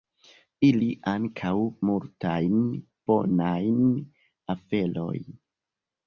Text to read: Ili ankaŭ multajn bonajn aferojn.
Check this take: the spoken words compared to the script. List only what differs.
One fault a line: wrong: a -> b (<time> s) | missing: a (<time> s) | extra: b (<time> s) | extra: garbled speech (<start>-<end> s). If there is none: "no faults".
no faults